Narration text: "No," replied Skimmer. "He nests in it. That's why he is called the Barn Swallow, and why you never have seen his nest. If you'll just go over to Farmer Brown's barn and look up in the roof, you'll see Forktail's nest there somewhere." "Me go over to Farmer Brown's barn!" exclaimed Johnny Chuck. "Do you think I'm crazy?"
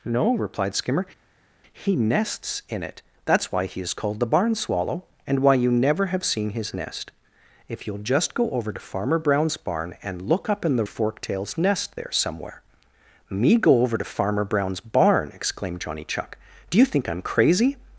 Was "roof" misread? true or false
true